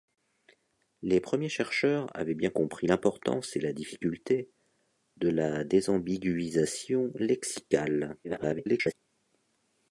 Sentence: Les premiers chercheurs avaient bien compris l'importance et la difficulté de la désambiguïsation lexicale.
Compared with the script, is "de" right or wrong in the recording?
right